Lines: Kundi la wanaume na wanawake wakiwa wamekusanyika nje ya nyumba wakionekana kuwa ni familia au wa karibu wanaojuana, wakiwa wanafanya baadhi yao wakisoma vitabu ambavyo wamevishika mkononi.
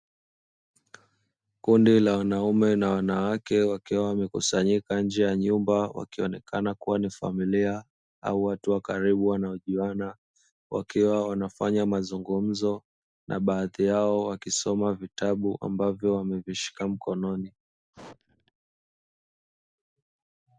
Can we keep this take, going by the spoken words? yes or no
no